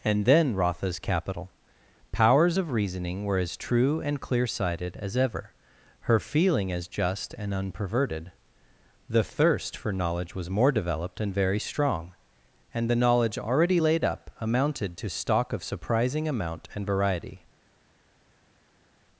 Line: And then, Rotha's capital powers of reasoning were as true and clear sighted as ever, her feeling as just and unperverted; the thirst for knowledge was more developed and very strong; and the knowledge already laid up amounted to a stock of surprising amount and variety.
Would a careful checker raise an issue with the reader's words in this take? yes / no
yes